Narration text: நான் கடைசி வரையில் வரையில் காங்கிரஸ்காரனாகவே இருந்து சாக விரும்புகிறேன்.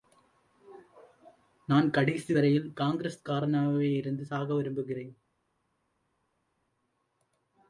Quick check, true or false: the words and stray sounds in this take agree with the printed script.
false